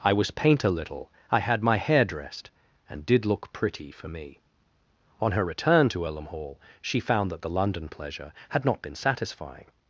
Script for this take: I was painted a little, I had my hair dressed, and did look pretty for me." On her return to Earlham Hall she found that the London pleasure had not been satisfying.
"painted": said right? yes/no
no